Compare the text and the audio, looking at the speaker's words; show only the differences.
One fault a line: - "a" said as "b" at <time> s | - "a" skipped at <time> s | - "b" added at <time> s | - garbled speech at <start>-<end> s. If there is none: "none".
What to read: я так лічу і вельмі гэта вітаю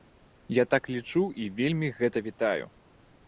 none